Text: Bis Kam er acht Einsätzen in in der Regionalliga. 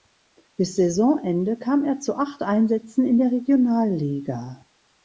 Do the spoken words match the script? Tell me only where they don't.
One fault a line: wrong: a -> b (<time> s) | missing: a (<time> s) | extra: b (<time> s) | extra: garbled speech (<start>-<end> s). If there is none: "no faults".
extra: Saisonende (0.8 s)
extra: zu (2.0 s)
missing: in (3.2 s)